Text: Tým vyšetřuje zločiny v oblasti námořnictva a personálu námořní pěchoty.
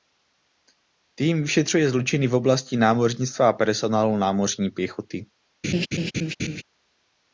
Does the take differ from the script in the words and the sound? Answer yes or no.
yes